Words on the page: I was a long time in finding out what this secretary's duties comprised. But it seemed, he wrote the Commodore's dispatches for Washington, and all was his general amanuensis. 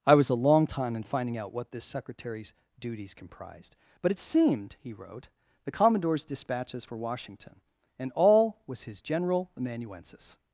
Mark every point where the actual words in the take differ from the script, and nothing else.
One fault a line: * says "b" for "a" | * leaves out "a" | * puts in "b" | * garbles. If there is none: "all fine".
all fine